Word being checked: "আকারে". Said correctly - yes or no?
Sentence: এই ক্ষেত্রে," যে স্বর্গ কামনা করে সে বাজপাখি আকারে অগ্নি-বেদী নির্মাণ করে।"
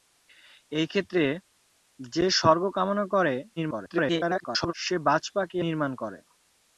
no